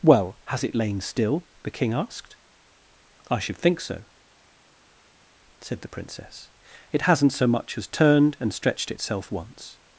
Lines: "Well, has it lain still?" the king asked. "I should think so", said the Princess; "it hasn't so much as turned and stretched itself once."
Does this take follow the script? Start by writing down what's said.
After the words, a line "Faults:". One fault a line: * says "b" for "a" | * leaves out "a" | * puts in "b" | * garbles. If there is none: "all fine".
"Well, has it lain still?" the king asked. "I should think so", said the Princess; "it hasn't so much as turned and stretched itself once."
Faults:
all fine